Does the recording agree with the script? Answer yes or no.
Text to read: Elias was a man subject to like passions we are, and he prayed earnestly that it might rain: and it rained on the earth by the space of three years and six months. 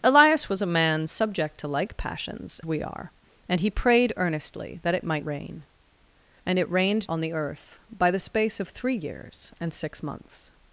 yes